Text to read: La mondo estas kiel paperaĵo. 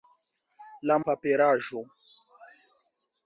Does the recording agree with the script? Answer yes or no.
no